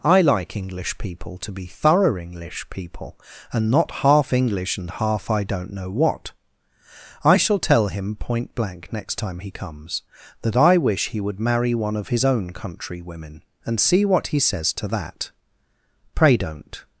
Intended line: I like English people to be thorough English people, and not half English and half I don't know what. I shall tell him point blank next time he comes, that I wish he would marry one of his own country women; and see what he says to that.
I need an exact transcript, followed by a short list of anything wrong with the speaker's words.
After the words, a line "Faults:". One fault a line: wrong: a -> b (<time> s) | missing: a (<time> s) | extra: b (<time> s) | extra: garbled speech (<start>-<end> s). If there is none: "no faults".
I like English people to be thorough English people, and not half English and half I don't know what. I shall tell him point blank next time he comes, that I wish he would marry one of his own country women; and see what he says to that. 'Pray don't
Faults:
extra: Pray don't (16.1 s)